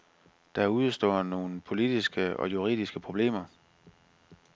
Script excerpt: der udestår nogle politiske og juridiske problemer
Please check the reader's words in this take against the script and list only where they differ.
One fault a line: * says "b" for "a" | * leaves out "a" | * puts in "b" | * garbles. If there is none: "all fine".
all fine